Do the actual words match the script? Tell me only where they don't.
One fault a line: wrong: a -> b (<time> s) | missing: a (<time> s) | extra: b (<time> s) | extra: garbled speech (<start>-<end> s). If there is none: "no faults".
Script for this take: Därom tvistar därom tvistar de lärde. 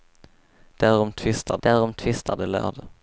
no faults